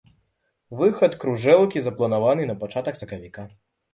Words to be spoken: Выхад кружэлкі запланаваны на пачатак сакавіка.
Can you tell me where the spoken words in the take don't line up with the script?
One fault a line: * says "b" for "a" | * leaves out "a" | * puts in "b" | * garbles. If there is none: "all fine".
all fine